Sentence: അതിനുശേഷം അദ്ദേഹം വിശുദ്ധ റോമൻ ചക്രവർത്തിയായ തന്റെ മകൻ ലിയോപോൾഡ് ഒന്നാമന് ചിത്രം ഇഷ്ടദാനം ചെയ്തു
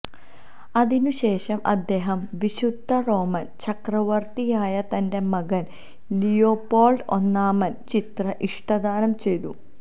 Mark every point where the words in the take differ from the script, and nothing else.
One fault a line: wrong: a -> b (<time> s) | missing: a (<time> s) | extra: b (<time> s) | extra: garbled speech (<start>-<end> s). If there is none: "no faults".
no faults